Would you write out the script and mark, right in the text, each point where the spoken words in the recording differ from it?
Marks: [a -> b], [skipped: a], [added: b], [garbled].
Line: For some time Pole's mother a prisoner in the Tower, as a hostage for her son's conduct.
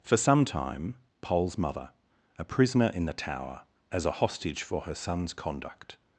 For some time Pole's mother a prisoner in the Tower, as a hostage for her son's conduct.